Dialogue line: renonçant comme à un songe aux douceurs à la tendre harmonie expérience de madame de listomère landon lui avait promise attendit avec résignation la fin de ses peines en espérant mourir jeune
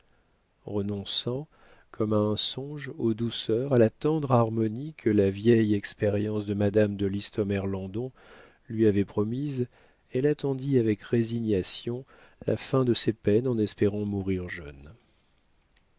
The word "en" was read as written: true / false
true